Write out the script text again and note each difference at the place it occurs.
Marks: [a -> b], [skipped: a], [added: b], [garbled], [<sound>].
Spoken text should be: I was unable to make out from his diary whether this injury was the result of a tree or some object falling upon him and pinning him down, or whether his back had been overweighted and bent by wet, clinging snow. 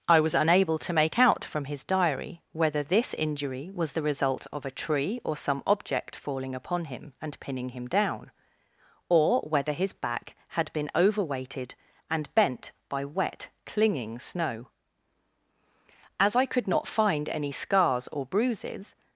I was unable to make out from his diary whether this injury was the result of a tree or some object falling upon him and pinning him down, or whether his back had been overweighted and bent by wet, clinging snow. [added: As I could not find any scars or bruises]